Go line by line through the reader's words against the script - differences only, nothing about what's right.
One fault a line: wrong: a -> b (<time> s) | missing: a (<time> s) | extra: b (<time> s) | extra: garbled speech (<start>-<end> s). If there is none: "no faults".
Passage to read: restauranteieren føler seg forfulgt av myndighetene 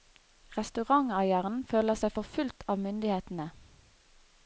no faults